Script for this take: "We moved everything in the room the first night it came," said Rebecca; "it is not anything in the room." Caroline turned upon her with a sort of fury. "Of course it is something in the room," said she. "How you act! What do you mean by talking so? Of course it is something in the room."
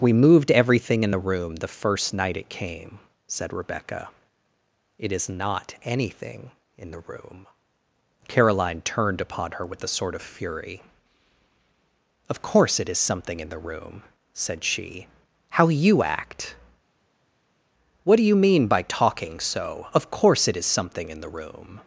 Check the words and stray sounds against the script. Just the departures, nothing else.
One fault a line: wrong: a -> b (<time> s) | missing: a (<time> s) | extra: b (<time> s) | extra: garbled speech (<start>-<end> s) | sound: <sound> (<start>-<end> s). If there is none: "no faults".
no faults